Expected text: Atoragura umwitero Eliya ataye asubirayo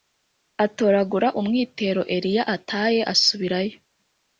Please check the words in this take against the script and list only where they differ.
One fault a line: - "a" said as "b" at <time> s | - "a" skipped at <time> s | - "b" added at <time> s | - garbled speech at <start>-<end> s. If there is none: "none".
none